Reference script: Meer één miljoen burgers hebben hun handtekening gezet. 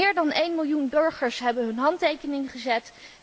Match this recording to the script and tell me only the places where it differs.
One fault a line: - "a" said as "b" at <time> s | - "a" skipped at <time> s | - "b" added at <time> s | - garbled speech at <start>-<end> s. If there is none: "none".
- "dan" added at 0.1 s